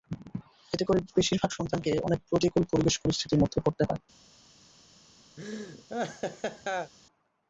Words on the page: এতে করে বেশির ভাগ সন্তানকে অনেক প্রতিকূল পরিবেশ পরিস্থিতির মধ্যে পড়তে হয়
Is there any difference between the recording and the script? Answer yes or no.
no